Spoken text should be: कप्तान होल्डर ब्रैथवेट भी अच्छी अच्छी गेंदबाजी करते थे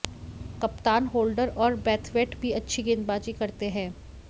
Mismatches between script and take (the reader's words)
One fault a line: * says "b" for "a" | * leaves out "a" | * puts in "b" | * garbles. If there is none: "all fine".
* puts in "और"
* leaves out "अच्छी"
* says "हैं" for "थे"